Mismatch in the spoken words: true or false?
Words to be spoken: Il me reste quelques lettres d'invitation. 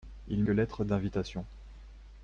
true